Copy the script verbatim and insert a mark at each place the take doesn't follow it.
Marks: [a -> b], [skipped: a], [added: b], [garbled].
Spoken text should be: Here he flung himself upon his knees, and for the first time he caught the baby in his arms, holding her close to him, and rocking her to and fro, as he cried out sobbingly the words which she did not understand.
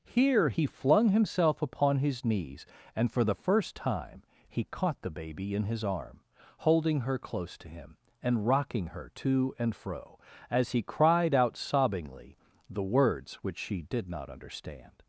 Here he flung himself upon his knees, and for the first time he caught the baby in his [arms, -> arm] holding her close to him, and rocking her to and fro, as he cried out sobbingly the words which she did not understand.